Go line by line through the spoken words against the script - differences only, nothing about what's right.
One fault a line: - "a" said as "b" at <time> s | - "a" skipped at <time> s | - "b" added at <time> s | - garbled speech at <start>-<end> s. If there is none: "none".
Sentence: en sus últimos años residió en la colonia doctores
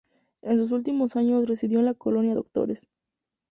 none